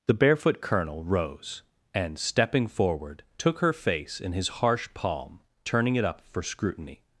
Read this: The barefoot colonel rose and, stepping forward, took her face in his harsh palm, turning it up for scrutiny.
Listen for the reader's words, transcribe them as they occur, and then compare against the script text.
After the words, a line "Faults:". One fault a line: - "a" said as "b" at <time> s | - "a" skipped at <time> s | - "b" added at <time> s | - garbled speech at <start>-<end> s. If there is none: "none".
The barefoot colonel rose and, stepping forward, took her face in his harsh palm, turning it up for scrutiny.
Faults:
none